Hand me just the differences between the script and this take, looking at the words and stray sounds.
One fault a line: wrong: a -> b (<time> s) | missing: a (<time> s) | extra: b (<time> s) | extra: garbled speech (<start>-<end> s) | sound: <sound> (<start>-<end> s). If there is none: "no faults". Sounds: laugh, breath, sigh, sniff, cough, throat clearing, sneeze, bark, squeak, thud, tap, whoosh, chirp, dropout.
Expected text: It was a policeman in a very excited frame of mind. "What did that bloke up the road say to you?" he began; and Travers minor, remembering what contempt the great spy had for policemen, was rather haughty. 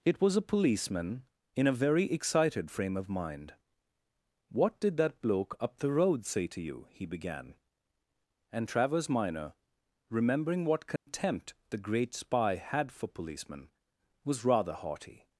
sound: dropout (11.0-11.1 s)